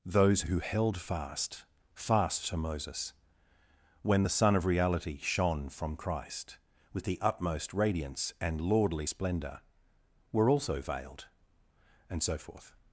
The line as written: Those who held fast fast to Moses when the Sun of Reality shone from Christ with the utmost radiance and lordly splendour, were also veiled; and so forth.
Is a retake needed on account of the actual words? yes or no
no